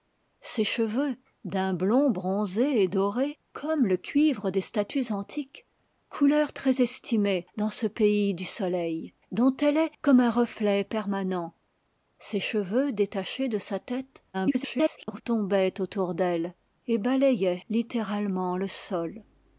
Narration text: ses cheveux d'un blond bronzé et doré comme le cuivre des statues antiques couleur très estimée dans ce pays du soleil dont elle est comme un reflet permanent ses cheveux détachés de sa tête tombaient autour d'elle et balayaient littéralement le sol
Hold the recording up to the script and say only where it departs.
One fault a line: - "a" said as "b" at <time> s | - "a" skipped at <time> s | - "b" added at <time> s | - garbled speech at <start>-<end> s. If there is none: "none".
- garbled speech at 14.3-15.2 s